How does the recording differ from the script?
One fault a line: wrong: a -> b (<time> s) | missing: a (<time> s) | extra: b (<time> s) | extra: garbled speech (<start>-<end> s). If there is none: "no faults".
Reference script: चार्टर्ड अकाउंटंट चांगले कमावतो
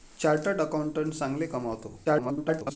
extra: garbled speech (2.1-2.8 s)